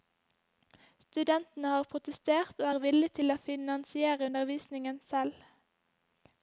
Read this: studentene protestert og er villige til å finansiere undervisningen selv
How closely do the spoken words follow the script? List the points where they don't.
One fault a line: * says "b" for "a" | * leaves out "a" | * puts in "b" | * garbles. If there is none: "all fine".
* puts in "har"